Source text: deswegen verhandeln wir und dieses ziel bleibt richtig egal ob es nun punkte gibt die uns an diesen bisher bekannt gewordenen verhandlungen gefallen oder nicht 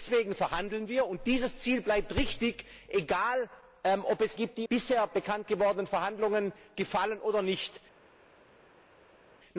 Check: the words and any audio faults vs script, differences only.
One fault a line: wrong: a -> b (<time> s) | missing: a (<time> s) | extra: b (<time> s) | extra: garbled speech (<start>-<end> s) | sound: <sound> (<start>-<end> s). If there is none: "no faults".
missing: nun punkte (4.4 s)
missing: uns an diesen (4.7 s)